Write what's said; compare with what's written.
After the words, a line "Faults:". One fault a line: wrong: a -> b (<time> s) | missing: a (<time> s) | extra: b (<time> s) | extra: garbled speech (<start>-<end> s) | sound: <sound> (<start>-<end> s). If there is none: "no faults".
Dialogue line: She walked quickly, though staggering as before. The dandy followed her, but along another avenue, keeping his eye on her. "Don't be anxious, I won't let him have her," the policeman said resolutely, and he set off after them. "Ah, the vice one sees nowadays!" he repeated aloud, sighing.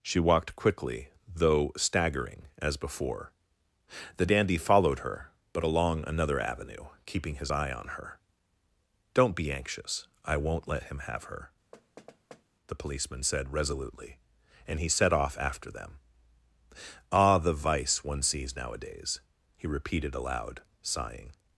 She walked quickly, though staggering as before. The dandy followed her, but along another avenue, keeping his eye on her. "Don't be anxious, I won't let him have her," the policeman said resolutely, and he set off after them. "Ah, the vice one sees nowadays!" he repeated aloud, sighing.
Faults:
sound: thud (11.7-12.4 s)